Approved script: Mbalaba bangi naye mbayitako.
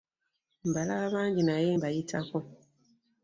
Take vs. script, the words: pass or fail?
pass